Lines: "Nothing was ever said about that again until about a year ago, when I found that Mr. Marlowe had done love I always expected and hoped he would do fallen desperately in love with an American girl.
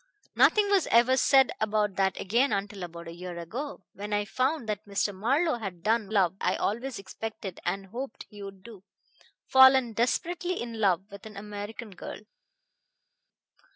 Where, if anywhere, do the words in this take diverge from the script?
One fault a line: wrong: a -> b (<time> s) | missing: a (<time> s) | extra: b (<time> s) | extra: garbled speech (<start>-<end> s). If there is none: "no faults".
no faults